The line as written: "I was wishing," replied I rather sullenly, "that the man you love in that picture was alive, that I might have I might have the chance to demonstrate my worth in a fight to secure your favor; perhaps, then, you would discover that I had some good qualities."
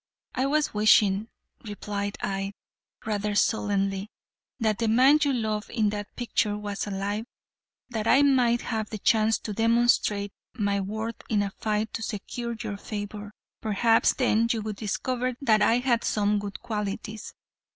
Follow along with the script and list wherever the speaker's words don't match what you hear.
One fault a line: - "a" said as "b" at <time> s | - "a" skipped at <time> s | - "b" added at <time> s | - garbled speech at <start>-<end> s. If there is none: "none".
- "I might have" skipped at 8.9 s